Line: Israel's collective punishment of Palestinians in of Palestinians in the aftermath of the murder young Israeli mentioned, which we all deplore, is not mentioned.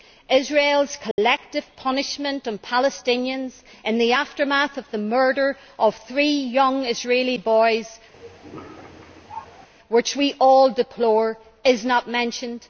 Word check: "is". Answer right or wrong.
right